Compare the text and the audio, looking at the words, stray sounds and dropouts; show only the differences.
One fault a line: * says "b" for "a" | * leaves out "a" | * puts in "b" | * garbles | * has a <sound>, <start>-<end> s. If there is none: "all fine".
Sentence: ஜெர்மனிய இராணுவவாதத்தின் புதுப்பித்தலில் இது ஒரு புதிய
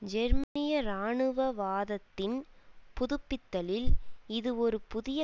* has a dropout, 0.4-0.6 s